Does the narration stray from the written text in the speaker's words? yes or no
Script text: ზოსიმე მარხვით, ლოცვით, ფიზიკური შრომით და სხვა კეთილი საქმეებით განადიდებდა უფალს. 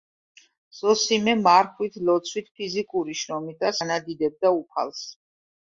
yes